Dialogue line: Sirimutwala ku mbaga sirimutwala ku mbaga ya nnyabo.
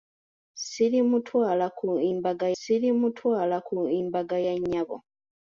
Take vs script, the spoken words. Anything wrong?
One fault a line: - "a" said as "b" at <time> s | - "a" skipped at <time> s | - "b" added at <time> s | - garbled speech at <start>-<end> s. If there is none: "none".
none